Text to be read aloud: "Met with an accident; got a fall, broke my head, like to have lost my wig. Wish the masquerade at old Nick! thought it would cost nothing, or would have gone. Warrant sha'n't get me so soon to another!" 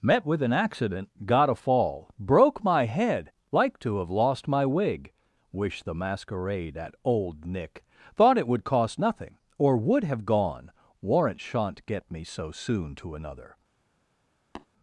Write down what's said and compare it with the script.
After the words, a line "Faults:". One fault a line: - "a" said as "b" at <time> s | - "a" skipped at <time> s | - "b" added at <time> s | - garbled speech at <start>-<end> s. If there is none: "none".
"Met with an accident; got a fall, broke my head, like to have lost my wig. Wish the masquerade at old Nick! thought it would cost nothing, or would have gone. Warrant sha'n't get me so soon to another!"
Faults:
none